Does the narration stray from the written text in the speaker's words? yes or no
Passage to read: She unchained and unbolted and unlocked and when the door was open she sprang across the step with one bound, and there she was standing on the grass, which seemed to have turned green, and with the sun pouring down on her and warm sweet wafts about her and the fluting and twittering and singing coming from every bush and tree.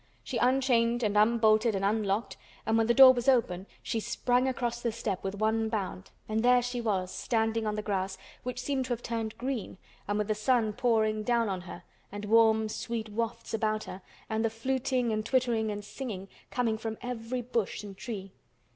no